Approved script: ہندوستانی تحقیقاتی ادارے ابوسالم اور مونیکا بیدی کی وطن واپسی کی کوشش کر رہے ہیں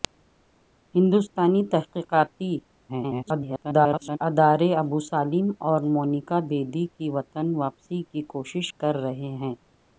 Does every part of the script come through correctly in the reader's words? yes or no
no